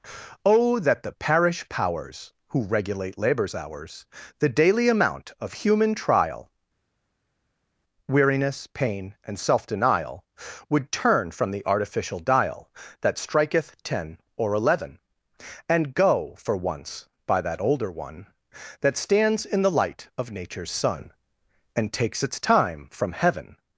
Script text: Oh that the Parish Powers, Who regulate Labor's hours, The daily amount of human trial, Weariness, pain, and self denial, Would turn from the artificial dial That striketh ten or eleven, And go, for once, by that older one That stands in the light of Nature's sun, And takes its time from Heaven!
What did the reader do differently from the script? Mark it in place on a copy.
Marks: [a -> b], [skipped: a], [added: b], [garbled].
Oh that the Parish Powers, Who regulate Labor's hours, The daily amount of human trial, Weariness, pain, and self denial, Would turn from the artificial dial That striketh ten or eleven, And go, for once, by that older one That stands in the light of Nature's sun, And takes its time from Heaven!